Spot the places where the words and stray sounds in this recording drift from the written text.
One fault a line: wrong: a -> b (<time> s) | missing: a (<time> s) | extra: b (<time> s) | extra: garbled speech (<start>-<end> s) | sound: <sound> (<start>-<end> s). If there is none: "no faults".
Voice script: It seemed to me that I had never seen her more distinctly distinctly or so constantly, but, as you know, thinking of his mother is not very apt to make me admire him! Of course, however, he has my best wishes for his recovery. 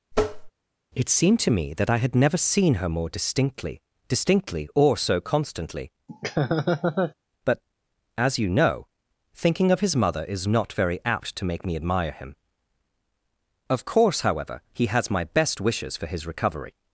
sound: tap (0.1-0.5 s)
sound: laugh (6.1-7.1 s)